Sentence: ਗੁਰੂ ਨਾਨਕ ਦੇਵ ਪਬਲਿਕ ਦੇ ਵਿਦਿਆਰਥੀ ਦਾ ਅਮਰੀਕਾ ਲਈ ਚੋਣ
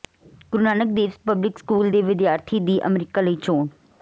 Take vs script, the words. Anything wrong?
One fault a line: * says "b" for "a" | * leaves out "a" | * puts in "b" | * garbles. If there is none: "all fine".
* puts in "ਸਕੂਲ"
* says "ਦੀ" for "ਦਾ"